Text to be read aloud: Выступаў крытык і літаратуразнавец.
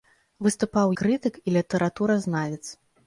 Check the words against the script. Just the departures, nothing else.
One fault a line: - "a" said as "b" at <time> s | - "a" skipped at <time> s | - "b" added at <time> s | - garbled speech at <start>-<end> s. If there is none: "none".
none